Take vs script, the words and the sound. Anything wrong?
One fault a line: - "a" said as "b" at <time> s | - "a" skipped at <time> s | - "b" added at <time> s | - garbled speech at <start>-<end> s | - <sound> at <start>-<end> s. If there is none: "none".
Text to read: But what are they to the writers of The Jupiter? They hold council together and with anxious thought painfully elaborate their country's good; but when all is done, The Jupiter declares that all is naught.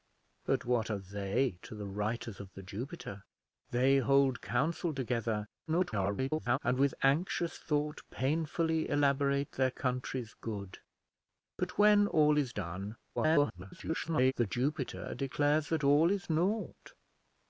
- garbled speech at 5.7-6.6 s
- garbled speech at 13.2-14.3 s